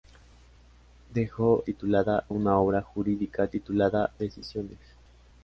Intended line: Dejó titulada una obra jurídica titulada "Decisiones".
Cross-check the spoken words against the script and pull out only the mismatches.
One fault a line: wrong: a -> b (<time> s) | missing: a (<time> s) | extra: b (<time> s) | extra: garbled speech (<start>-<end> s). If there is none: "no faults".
no faults